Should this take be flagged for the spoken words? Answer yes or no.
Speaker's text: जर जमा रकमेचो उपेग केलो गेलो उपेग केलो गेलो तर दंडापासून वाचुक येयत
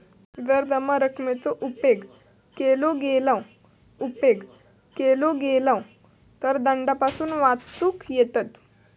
no